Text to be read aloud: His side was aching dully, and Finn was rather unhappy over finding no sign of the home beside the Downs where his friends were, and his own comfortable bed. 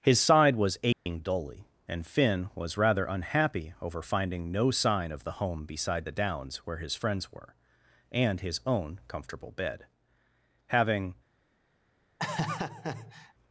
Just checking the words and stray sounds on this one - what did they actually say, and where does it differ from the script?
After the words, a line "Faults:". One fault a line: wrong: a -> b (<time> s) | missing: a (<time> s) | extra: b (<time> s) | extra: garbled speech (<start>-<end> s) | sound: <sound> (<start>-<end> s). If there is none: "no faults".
His side was aching dully, and Finn was rather unhappy over finding no sign of the home beside the Downs where his friends were, and his own comfortable bed. Having
Faults:
sound: dropout (0.9-1.1 s)
extra: Having (10.7 s)
sound: laugh (12.2-13.3 s)